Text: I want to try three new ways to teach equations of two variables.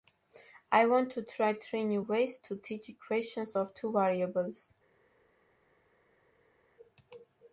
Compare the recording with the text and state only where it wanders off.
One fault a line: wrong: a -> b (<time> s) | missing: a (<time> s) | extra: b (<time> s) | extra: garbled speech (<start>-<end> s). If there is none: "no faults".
no faults